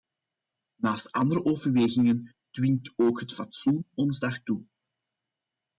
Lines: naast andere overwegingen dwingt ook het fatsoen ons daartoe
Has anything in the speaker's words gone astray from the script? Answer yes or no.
no